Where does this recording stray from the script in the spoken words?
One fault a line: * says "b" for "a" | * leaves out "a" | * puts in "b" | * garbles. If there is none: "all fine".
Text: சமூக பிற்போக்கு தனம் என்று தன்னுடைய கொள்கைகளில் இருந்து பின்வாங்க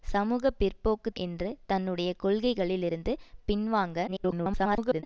* leaves out "தனம்"
* garbles